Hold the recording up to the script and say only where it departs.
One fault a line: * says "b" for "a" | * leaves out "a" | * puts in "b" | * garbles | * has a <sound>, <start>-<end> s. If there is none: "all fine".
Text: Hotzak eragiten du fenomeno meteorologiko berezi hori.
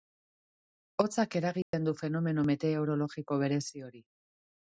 * has a dropout, 1.6-1.7 s